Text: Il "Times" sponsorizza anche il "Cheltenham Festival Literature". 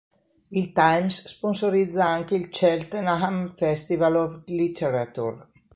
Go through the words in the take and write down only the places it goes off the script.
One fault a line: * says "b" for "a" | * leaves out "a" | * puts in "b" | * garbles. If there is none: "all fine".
* puts in "of"